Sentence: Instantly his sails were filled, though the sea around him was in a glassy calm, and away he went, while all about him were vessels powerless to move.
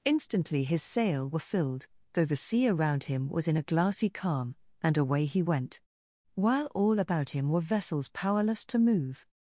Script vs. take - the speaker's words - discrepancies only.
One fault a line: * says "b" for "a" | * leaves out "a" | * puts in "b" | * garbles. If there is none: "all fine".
* says "sail" for "sails"